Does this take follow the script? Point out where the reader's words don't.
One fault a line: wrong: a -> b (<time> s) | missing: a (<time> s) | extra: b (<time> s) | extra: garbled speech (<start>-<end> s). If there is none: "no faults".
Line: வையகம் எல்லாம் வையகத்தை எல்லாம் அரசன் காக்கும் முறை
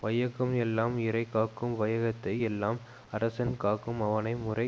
extra: இறை காக்கும் (1.0 s)
extra: அவனை (4.0 s)